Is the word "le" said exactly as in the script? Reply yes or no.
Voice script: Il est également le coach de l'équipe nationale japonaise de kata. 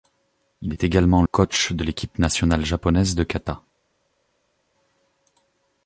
no